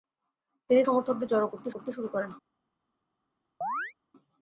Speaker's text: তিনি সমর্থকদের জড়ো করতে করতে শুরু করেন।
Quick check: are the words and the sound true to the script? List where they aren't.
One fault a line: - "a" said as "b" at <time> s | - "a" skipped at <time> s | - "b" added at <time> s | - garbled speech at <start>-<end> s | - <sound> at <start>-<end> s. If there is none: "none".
- chirp at 3.6-3.9 s